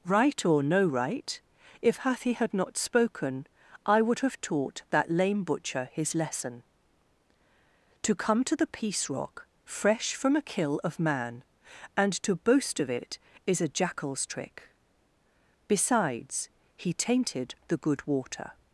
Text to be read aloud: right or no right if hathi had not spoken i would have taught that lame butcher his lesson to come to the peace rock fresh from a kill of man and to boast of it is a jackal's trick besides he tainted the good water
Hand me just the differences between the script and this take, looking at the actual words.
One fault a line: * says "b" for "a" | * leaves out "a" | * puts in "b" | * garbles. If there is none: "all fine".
all fine